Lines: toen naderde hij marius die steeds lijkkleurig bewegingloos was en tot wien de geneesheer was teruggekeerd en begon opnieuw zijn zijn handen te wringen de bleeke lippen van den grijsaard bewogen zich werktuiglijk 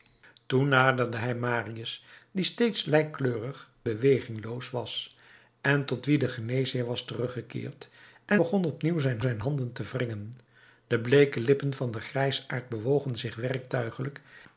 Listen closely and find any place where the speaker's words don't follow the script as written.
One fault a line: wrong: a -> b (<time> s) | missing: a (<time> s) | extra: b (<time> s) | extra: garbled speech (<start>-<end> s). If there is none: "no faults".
no faults